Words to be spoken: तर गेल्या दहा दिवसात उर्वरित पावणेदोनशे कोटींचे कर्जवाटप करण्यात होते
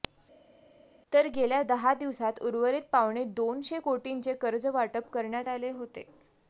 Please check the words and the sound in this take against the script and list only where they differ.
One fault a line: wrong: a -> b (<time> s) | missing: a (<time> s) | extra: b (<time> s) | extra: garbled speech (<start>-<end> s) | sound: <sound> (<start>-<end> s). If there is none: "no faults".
extra: आले (5.5 s)